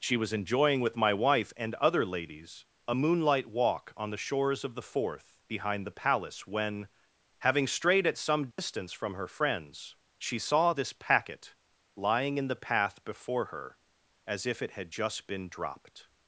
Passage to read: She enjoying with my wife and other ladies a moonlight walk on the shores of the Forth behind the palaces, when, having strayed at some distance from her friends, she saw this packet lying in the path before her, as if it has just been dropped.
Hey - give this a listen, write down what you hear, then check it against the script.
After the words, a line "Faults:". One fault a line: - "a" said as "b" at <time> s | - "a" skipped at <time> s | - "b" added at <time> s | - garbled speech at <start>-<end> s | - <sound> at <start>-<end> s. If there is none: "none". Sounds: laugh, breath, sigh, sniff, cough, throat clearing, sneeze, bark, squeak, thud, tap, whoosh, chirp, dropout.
She was enjoying with my wife and other ladies a moonlight walk on the shores of the Forth behind the palace, when, having strayed at some distance from her friends, she saw this packet lying in the path before her, as if it had just been dropped.
Faults:
- "was" added at 0.2 s
- "palaces" said as "palace" at 5.9 s
- dropout at 8.5-8.6 s
- "has" said as "had" at 14.7 s